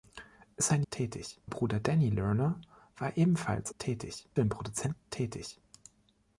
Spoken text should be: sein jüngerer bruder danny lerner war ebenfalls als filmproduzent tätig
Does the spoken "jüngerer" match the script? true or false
false